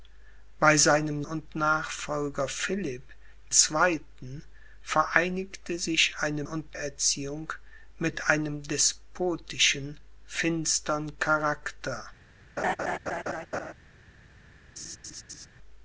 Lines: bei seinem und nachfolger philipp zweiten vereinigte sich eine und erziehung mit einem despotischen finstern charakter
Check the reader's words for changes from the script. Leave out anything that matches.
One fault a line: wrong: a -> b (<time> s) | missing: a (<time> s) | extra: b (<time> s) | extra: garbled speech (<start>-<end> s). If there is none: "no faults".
no faults